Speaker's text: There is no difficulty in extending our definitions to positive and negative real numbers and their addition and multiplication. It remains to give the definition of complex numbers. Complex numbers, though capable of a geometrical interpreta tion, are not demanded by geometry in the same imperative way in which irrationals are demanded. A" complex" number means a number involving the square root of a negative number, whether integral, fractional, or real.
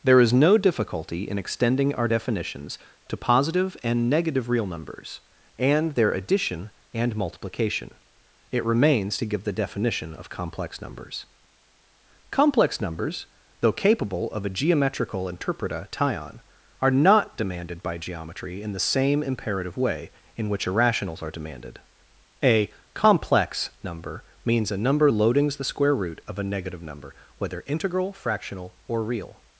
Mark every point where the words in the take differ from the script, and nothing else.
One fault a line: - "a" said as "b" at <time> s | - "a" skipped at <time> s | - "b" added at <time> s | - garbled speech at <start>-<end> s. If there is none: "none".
- "involving" said as "loadings" at 25.1 s